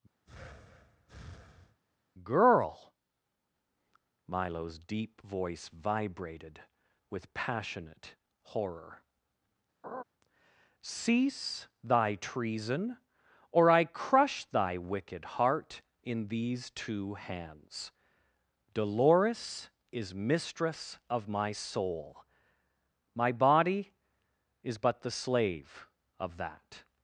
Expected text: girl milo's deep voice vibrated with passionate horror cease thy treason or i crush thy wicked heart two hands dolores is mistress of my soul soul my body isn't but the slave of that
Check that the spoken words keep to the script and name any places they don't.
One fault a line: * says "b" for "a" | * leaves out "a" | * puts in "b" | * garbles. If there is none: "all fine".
* puts in "in these"
* leaves out "soul"
* says "is" for "isn't"